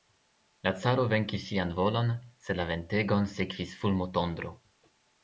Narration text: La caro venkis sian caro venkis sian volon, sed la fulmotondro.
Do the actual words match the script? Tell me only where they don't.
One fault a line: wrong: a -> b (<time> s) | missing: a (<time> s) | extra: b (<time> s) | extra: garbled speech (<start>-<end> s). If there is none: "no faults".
missing: caro venkis sian (1.7 s)
extra: ventegon sekvis (2.7 s)